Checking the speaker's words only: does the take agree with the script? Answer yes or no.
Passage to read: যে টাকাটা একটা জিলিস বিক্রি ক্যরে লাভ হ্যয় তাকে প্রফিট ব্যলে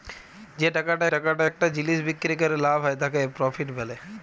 no